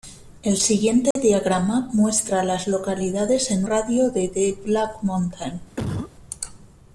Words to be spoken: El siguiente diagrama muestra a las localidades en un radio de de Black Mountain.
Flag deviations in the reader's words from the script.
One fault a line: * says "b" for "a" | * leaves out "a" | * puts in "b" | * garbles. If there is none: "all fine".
* leaves out "un"